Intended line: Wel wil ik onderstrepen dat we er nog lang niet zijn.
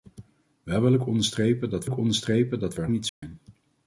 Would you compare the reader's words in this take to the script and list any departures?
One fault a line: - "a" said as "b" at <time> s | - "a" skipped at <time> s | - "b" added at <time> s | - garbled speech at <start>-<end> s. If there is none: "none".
- "ik onderstrepen dat" added at 1.8 s
- "nog lang" skipped at 2.9 s